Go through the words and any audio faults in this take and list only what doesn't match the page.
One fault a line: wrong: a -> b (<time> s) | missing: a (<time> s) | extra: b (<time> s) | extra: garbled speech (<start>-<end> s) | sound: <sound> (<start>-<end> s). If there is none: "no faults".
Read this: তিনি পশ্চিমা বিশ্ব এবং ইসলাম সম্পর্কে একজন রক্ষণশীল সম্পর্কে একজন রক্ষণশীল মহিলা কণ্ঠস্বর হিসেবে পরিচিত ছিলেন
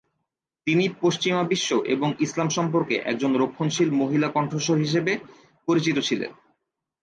missing: সম্পর্কে একজন রক্ষণশীল (3.9 s)